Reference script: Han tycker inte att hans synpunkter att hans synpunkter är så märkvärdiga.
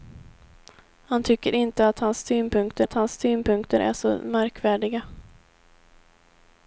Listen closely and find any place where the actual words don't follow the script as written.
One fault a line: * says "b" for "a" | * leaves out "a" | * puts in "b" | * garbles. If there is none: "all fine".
all fine